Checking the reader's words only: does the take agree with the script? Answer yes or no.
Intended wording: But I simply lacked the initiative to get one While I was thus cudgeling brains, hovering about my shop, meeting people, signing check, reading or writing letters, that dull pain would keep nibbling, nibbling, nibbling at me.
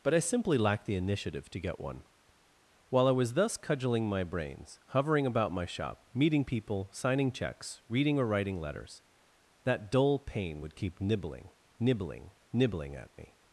no